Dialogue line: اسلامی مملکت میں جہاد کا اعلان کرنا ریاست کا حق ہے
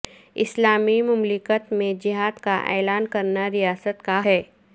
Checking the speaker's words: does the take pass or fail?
fail